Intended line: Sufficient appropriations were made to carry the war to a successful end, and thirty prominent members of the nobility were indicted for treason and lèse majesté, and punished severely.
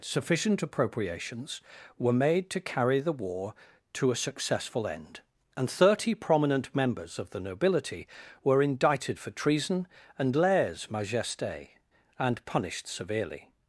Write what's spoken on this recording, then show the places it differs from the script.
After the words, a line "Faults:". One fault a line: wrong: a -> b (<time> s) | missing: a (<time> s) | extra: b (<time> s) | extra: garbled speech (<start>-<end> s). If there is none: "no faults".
Sufficient appropriations were made to carry the war to a successful end, and thirty prominent members of the nobility were indicted for treason and lèse majesté, and punished severely.
Faults:
no faults